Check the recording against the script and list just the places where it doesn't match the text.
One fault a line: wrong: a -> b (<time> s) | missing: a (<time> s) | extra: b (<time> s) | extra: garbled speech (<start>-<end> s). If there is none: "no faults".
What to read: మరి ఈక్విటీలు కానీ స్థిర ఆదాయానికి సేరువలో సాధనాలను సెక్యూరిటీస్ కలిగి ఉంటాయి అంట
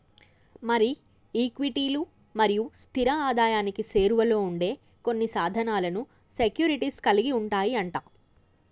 wrong: కానీ -> మరియు (2.4 s)
extra: ఉండే కొన్ని (4.4 s)